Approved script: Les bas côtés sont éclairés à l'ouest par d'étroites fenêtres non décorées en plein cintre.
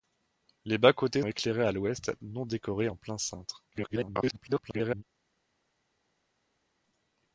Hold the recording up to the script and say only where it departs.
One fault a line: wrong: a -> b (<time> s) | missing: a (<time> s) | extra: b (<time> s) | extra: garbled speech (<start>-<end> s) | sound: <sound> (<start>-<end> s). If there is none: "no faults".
missing: sont (1.2 s)
missing: par d'étroites fenêtres (2.1 s)
extra: garbled speech (3.7-5.0 s)